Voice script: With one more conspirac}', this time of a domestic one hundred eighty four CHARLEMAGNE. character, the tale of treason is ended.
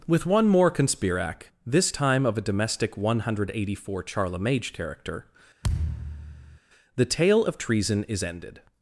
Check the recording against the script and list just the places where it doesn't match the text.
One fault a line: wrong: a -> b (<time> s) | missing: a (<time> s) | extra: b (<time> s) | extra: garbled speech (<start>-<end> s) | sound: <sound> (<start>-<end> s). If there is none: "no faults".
sound: thud (5.6-6.6 s)